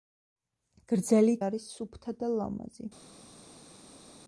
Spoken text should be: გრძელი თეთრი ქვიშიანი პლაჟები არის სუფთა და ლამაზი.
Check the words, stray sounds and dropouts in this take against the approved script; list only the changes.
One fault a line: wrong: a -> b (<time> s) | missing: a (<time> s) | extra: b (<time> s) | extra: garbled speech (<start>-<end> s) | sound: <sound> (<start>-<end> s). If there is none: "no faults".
missing: თეთრი ქვიშიანი პლაჟები (1.4 s)